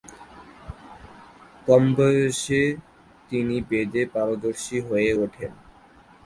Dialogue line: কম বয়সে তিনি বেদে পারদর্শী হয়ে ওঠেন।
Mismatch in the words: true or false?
false